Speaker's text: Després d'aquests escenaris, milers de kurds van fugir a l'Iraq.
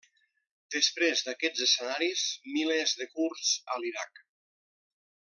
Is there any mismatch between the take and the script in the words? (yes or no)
yes